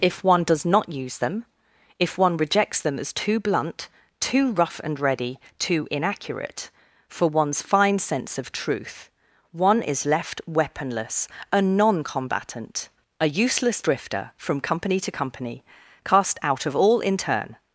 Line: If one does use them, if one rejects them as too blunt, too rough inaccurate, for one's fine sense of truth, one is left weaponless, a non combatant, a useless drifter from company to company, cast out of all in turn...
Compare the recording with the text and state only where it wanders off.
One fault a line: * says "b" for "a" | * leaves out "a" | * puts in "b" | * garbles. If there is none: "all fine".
* puts in "not"
* puts in "and ready too"